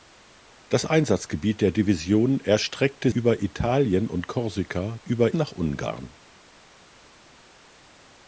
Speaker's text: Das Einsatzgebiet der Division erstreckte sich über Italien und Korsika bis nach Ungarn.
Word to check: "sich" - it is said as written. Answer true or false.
false